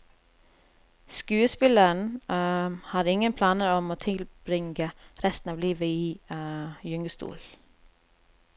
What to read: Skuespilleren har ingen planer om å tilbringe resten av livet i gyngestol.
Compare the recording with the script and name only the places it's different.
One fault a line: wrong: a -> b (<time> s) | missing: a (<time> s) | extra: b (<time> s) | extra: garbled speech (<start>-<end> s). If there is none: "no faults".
no faults